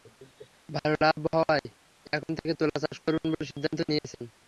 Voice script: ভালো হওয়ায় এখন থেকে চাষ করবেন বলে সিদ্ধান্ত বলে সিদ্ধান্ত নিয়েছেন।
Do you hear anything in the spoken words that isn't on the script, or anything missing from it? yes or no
yes